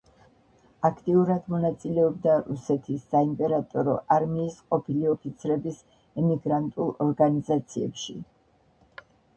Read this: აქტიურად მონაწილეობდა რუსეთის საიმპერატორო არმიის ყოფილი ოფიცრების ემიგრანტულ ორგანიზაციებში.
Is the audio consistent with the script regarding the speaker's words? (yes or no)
yes